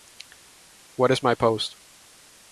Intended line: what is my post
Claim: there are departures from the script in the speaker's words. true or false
false